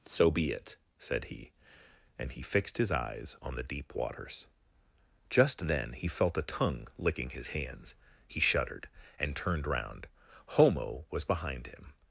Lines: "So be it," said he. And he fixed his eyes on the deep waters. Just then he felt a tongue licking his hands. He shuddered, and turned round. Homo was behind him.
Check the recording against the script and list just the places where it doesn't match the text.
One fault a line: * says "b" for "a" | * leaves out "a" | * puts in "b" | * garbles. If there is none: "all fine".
all fine